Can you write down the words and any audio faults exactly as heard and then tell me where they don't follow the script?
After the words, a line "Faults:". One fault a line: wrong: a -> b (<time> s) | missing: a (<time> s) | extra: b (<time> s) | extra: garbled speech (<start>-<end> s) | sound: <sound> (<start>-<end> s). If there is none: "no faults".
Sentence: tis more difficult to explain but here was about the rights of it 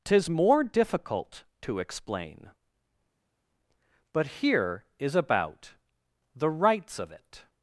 tis more difficult to explain but here is about the rights of it
Faults:
wrong: was -> is (5.0 s)